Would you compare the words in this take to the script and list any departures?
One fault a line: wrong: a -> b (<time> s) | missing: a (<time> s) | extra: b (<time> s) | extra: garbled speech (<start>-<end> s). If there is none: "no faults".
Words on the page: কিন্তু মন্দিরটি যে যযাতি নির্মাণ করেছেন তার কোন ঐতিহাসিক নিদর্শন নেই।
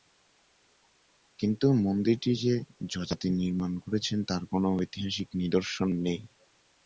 no faults